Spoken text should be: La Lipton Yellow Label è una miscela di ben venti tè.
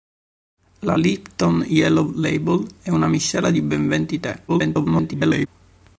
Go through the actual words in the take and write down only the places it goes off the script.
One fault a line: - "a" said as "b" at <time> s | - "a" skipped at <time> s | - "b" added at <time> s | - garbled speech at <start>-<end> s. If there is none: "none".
- garbled speech at 4.5-5.5 s